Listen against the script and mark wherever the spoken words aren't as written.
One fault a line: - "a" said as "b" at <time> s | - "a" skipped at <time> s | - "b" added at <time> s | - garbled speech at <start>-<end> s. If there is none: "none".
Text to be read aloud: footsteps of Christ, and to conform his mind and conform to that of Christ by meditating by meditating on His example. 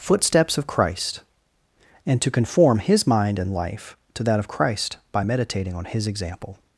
- "conform" said as "life" at 3.5 s
- "by meditating" skipped at 5.7 s